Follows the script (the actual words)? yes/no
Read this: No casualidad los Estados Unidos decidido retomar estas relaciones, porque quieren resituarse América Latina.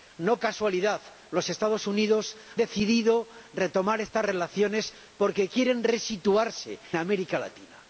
yes